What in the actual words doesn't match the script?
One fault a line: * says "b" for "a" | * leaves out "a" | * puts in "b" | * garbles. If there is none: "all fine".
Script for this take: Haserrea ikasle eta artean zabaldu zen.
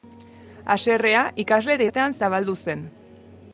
all fine